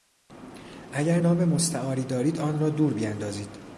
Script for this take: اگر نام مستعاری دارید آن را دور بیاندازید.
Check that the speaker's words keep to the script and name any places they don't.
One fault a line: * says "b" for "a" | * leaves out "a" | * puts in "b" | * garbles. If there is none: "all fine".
all fine